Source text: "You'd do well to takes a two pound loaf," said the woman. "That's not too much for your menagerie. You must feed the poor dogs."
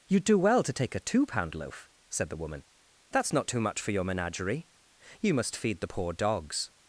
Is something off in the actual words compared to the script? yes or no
yes